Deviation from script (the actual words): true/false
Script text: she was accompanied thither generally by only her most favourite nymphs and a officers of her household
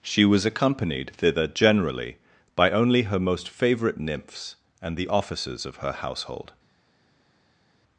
true